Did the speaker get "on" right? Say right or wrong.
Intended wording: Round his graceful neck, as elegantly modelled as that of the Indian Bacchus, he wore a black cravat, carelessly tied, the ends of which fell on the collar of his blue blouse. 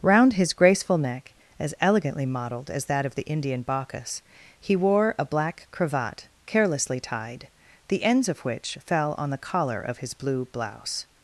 right